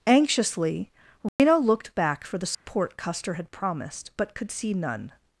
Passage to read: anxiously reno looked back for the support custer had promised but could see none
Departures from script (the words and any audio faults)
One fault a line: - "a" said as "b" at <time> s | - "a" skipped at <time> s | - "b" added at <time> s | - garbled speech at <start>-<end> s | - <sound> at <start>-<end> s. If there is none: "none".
- dropout at 1.3-1.4 s
- dropout at 2.5-2.7 s